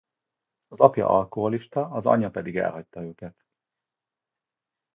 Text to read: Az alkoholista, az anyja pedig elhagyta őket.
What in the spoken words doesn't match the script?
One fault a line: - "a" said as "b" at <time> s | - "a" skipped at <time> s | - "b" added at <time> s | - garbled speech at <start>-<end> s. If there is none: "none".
- "apja" added at 0.8 s